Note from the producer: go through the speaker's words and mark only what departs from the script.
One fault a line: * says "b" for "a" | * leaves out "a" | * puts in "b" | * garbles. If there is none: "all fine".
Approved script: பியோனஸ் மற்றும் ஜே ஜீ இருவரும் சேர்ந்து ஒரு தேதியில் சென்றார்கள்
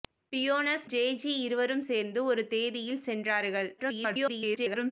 * leaves out "மற்றும்"
* garbles